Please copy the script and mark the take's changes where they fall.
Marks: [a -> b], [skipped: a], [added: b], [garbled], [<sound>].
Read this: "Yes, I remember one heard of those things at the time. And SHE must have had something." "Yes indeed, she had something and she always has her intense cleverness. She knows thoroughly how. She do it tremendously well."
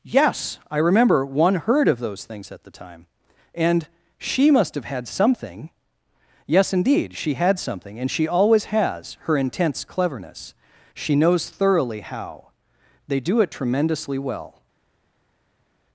"Yes, I remember one heard of those things at the time. And SHE must have had something." "Yes indeed, she had something and she always has her intense cleverness. She knows thoroughly how. [She -> They] do it tremendously well."